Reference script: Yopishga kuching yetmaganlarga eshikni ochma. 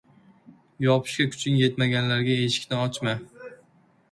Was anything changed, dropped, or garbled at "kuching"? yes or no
no